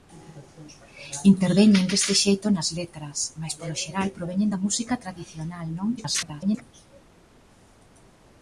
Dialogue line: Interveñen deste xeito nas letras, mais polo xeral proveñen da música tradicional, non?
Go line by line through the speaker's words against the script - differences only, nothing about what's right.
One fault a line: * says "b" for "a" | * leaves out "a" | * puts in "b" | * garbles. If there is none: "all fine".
* garbles